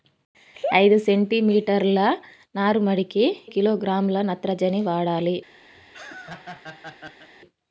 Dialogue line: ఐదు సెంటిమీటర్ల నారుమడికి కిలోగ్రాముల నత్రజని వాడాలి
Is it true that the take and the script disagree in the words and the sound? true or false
true